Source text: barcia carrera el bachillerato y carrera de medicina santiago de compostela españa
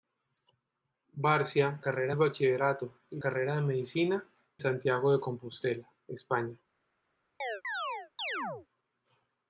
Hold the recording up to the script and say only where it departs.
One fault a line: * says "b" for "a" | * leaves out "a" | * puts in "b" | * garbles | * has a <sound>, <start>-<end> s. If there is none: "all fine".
* has a chirp, 7.4-8.7 s